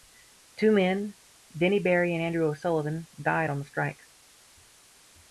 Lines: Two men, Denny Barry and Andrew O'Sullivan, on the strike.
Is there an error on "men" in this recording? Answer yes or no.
no